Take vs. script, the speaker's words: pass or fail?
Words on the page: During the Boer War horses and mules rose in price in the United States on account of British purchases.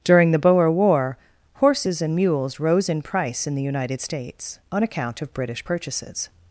pass